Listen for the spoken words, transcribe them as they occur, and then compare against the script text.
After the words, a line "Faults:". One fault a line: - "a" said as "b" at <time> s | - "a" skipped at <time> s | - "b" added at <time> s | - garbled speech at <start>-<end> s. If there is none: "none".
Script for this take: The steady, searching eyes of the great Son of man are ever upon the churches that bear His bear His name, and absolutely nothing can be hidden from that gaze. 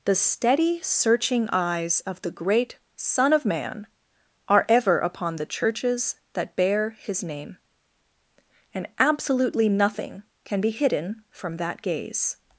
The steady, searching eyes of the great Son of man are ever upon the churches that bear His name, and absolutely nothing can be hidden from that gaze.
Faults:
- "bear His" skipped at 7.2 s